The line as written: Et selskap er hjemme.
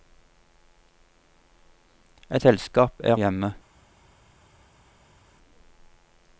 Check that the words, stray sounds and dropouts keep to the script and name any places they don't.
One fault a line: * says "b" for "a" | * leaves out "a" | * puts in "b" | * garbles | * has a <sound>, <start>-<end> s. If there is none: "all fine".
all fine